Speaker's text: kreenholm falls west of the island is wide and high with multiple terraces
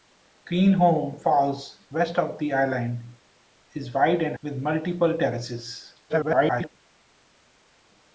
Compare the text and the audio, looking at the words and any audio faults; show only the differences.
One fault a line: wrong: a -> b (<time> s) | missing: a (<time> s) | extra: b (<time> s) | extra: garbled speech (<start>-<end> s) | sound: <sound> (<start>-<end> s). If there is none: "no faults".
missing: high (4.3 s)
extra: garbled speech (6.1-6.7 s)